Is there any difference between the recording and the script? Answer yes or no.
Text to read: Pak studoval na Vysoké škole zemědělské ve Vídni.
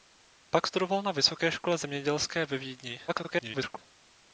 yes